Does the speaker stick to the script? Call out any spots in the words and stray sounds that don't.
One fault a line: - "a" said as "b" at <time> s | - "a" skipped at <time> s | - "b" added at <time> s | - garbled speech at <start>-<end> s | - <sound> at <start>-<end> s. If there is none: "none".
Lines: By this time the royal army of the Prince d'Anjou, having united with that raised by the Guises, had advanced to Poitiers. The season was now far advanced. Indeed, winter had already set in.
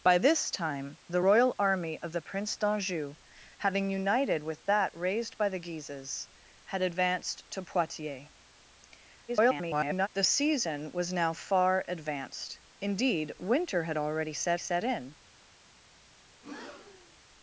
- garbled speech at 9.3-10.1 s
- "set" added at 14.6 s
- breath at 16.3-17.2 s